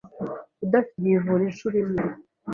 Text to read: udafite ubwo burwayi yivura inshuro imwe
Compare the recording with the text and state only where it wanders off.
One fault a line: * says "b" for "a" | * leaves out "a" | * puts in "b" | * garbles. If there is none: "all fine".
* leaves out "ubwo burwayi"